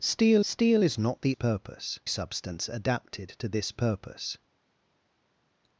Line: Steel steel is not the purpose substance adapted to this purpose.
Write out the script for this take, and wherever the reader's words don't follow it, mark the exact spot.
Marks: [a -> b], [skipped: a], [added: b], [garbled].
Steel steel is not the purpose substance adapted to this purpose.